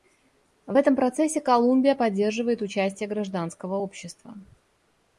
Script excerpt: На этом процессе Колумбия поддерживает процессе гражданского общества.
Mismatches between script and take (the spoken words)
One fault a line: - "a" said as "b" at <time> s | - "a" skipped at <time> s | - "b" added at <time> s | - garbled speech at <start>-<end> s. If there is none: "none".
- "На" said as "В" at 0.7 s
- "процессе" said as "участие" at 2.6 s